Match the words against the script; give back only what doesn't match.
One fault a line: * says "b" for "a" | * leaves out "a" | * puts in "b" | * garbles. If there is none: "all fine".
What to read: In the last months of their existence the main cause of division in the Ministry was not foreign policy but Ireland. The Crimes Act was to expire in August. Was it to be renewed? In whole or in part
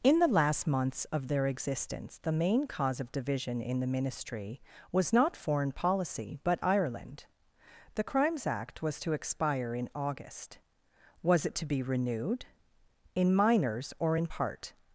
* says "minors" for "whole"